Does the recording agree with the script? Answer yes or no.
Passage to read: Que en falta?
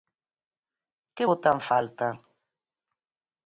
no